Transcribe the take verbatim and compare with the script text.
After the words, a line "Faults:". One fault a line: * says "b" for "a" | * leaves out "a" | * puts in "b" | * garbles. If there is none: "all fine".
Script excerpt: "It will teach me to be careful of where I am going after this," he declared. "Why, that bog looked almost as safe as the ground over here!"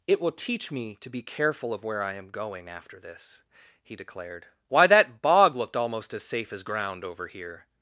"It will teach me to be careful of where I am going after this," he declared. "Why, that bog looked almost as safe as ground over here!"
Faults:
* leaves out "the"